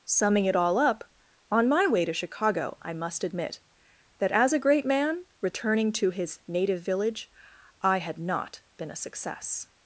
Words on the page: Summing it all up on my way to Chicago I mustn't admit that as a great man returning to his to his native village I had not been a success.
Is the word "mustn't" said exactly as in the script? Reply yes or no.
no